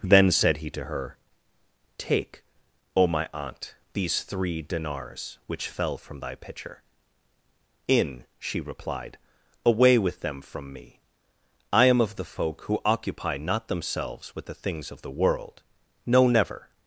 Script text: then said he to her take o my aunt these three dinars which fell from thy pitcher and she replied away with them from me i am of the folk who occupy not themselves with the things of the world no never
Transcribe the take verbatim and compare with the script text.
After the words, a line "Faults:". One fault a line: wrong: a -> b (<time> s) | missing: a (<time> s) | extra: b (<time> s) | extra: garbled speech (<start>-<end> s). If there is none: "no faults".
then said he to her take o my aunt these three dinars which fell from thy pitcher in she replied away with them from me i am of the folk who occupy not themselves with the things of the world no never
Faults:
wrong: and -> in (7.9 s)